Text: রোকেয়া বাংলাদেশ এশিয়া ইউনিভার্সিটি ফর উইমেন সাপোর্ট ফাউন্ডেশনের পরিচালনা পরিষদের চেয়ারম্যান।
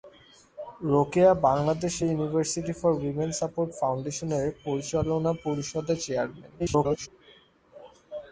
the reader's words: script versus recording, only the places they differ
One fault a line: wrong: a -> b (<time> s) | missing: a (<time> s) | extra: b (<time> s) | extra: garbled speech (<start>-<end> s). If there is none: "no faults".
missing: এশিয়া (1.9 s)
extra: garbled speech (6.6-7.1 s)